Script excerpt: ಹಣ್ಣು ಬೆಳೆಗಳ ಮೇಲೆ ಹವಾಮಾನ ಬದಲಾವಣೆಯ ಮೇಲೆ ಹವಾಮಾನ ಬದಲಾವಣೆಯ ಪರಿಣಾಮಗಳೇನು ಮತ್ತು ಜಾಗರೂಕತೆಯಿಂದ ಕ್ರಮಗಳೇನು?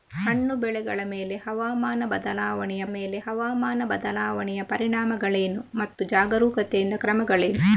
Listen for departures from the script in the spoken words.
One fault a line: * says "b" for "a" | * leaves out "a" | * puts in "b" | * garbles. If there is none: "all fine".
all fine